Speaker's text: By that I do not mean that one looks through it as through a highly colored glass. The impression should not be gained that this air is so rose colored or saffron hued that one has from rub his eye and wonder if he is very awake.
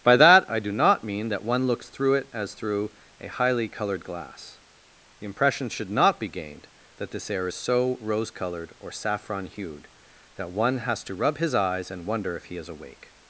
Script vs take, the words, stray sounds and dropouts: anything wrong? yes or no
yes